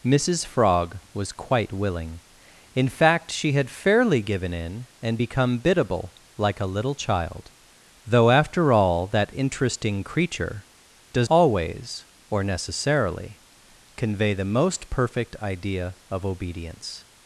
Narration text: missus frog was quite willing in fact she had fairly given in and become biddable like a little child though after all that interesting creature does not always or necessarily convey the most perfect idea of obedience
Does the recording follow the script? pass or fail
fail